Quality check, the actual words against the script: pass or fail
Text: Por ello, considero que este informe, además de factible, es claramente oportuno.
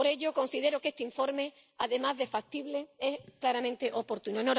pass